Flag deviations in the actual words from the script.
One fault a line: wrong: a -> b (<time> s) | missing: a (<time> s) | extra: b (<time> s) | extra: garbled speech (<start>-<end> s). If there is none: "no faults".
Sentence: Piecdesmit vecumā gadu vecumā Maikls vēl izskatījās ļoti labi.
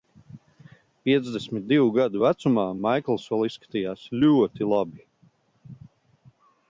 wrong: vecumā -> divu (1.7 s)